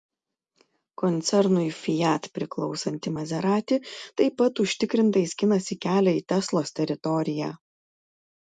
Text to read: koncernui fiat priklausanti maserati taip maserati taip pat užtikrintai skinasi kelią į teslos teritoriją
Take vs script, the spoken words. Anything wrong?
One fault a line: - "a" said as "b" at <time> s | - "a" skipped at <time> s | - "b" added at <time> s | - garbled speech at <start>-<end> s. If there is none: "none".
- "maserati taip" skipped at 4.4 s